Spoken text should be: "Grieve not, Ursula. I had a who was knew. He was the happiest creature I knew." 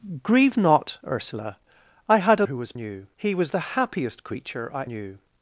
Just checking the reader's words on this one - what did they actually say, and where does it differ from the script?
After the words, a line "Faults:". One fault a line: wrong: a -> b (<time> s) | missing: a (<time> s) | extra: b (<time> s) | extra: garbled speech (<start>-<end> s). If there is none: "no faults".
"Grieve not, Ursula. I had a who was knew. He was the happiest creature I knew."
Faults:
no faults